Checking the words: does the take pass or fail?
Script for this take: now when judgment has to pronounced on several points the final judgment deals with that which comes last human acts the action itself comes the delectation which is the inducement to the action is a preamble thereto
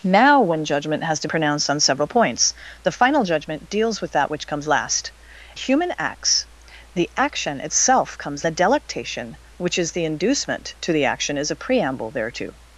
pass